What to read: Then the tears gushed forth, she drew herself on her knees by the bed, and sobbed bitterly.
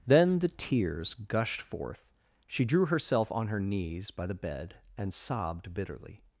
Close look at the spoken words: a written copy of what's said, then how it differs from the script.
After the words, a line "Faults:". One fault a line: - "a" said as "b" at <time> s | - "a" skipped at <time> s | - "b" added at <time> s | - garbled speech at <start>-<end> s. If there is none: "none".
Then the tears gushed forth, she drew herself on her knees by the bed, and sobbed bitterly.
Faults:
none